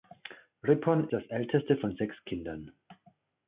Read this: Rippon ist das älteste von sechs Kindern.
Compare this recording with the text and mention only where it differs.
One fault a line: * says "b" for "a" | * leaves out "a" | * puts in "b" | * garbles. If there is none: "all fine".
* leaves out "ist"